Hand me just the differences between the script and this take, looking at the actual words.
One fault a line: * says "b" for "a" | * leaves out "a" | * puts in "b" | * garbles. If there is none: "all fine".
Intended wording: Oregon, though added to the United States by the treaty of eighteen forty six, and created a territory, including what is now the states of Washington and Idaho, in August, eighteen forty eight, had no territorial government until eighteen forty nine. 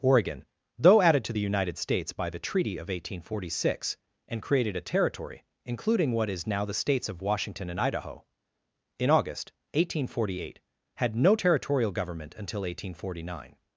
all fine